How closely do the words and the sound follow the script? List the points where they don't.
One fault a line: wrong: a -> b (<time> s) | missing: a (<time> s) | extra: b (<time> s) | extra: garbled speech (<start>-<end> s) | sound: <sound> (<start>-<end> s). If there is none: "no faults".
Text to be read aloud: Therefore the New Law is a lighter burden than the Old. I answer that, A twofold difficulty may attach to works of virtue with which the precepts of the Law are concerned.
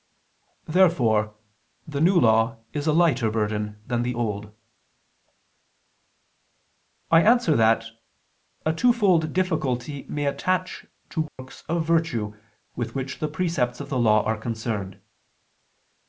sound: dropout (11.3-11.4 s)